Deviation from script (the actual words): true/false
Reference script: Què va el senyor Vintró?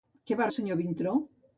false